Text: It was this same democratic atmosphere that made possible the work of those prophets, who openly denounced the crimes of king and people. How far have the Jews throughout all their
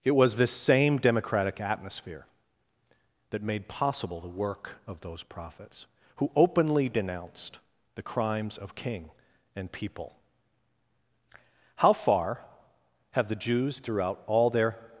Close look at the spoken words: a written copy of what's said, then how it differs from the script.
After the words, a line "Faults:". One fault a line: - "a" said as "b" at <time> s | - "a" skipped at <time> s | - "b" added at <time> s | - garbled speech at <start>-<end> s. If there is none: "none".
It was this same democratic atmosphere that made possible the work of those prophets, who openly denounced the crimes of king and people. How far have the Jews throughout all their
Faults:
none